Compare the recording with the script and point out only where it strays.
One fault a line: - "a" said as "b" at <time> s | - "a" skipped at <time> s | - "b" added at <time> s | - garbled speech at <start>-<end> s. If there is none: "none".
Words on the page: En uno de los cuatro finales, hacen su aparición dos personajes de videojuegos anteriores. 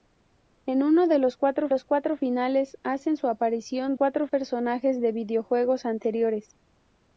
- "los cuatro" added at 1.7 s
- "dos" said as "cuatro" at 3.9 s